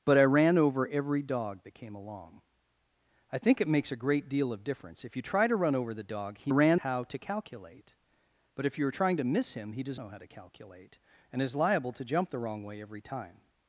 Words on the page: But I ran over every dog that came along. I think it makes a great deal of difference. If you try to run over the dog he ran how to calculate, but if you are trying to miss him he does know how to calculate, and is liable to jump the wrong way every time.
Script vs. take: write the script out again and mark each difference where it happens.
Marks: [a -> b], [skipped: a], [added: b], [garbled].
But I ran over every dog that came along. I think it makes a great deal of difference. If you try to run over the dog he ran how to calculate, but if you are trying to miss him he does know how to calculate, and is liable to jump the wrong way every time.